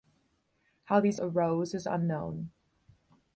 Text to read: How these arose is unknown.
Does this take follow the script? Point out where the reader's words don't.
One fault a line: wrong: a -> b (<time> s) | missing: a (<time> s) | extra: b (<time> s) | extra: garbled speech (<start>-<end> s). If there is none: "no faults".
no faults